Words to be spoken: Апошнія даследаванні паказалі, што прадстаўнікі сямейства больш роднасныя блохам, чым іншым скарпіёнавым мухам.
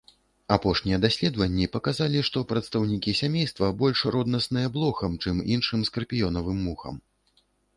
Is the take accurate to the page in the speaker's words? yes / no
yes